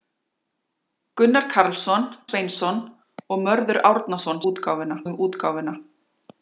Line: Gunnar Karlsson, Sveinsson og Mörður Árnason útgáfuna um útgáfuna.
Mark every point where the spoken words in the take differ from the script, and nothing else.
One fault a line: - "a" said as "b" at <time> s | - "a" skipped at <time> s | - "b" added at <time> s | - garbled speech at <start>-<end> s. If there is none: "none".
none